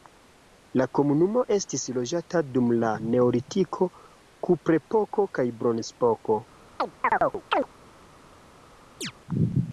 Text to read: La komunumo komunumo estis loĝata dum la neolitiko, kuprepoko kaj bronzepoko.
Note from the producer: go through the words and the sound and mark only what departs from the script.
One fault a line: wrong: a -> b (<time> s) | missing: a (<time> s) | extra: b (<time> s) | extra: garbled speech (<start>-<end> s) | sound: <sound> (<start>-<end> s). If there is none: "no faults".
missing: komunumo (1.4 s)
sound: chirp (6.8-7.7 s)
sound: chirp (9.0-9.1 s)